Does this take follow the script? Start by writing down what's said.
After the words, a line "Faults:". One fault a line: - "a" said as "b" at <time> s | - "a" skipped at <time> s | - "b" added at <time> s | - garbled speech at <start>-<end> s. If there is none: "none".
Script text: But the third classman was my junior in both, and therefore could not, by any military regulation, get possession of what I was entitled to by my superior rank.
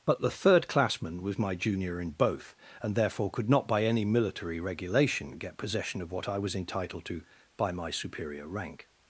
But the third classman was my junior in both, and therefore could not, by any military regulation, get possession of what I was entitled to by my superior rank.
Faults:
none